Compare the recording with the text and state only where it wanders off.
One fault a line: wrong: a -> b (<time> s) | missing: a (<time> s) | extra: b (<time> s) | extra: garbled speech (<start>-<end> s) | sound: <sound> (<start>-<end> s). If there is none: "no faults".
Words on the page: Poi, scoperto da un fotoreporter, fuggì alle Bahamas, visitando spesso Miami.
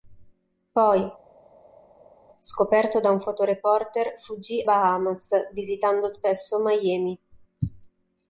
missing: alle (4.6 s)